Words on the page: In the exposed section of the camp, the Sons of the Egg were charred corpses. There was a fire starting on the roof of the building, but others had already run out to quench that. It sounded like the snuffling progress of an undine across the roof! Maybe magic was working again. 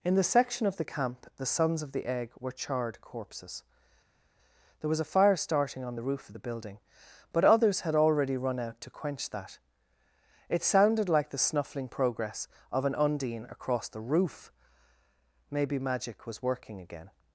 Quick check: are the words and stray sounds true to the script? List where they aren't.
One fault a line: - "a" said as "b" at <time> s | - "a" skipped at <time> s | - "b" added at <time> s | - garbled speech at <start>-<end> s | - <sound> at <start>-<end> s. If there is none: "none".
- "exposed" skipped at 0.2 s